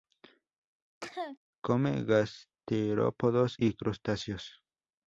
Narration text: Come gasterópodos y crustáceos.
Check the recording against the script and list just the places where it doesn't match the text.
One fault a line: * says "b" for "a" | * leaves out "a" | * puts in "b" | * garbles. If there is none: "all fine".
all fine